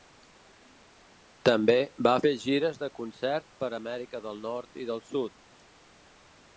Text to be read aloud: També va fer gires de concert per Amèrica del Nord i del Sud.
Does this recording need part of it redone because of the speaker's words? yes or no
no